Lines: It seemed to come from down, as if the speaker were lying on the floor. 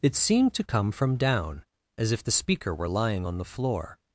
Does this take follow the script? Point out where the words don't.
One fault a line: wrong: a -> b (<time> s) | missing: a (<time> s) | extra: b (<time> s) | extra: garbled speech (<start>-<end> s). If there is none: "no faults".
no faults